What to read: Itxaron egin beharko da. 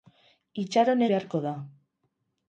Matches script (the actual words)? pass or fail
fail